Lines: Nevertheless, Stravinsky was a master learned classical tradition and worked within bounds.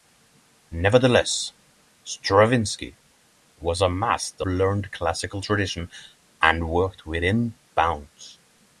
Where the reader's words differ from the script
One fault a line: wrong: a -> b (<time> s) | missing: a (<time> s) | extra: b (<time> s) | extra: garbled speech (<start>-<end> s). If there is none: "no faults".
no faults